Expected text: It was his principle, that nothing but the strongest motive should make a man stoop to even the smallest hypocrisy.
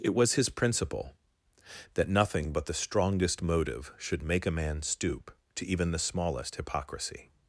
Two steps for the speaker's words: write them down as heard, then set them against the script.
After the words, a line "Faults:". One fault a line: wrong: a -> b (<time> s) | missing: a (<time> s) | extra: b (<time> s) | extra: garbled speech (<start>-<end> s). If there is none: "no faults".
It was his principle, that nothing but the strongest motive should make a man stoop to even the smallest hypocrisy.
Faults:
no faults